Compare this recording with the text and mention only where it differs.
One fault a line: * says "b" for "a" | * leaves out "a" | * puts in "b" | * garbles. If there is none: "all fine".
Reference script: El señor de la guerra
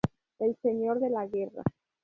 all fine